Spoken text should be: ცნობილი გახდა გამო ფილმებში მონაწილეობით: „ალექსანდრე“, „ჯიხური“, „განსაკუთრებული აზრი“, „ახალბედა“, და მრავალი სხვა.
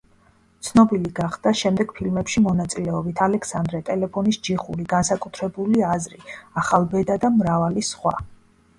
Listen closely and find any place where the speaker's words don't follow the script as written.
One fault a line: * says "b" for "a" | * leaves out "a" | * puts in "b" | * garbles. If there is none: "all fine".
* says "შემდეგ" for "გამო"
* puts in "ტელეფონის"